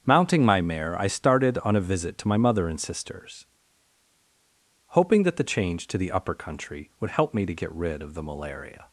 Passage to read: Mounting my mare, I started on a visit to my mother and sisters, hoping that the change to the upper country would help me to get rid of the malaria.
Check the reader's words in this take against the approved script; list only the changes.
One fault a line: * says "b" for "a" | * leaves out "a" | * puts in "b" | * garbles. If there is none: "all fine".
all fine